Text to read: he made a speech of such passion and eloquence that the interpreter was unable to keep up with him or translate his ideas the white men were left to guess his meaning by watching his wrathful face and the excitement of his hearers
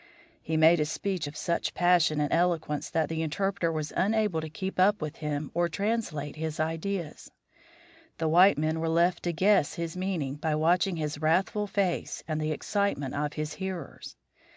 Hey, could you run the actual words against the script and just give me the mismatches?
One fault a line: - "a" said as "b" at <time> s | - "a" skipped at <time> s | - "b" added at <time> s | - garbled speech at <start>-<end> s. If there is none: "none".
none